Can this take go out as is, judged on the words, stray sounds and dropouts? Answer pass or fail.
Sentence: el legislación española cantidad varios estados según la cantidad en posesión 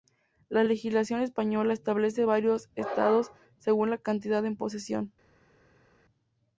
fail